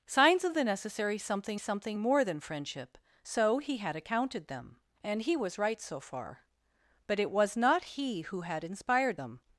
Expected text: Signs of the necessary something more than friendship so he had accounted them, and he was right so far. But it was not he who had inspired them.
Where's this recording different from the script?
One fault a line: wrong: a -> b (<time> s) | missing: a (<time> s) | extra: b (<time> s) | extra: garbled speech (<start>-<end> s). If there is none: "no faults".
extra: something (1.6 s)